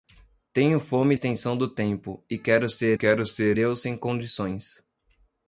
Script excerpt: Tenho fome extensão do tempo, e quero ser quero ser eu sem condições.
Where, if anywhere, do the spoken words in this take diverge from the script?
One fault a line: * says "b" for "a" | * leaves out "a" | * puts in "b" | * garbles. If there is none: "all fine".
all fine